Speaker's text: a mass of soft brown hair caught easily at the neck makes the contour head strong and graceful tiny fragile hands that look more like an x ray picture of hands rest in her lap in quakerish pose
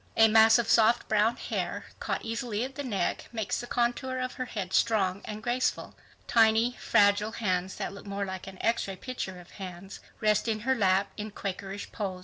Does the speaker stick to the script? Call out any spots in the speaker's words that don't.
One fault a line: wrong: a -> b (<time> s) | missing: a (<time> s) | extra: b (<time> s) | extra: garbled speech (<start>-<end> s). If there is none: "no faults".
extra: of her (4.2 s)